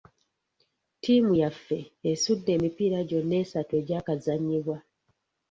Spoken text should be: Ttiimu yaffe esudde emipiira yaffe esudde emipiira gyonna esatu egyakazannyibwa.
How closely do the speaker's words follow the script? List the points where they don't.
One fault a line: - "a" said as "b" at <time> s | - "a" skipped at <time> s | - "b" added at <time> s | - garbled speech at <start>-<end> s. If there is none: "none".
- "yaffe esudde emipiira" skipped at 3.0 s